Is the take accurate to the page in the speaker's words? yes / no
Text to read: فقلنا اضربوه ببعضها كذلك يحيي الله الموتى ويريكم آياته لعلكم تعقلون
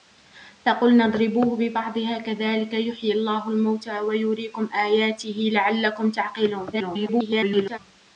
no